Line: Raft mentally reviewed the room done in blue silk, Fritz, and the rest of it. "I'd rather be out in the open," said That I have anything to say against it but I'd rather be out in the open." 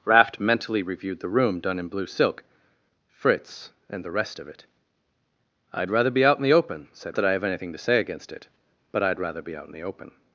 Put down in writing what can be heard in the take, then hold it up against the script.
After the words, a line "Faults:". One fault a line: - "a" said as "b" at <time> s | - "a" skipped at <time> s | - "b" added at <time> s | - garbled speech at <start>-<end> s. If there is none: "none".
Raft mentally reviewed the room done in blue silk, Fritz, and the rest of it. "I'd rather be out in the open," said That I have anything to say against it but I'd rather be out in the open."
Faults:
none